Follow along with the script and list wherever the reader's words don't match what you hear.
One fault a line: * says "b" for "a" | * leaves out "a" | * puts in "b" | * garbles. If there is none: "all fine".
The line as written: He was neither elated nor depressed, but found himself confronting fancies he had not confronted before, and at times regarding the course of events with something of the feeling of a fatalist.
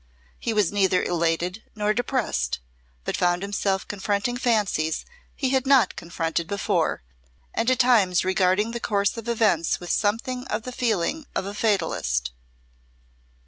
all fine